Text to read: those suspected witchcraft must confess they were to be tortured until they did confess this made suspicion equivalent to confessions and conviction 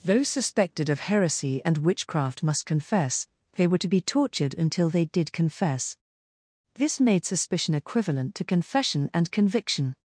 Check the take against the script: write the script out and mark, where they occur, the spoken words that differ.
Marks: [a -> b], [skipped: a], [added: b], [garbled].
those suspected [added: of heresy and] witchcraft must confess they were to be tortured until they did confess this made suspicion equivalent to [confessions -> confession] and conviction